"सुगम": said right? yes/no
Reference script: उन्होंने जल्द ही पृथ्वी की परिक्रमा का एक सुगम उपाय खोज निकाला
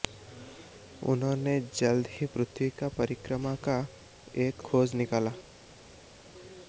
no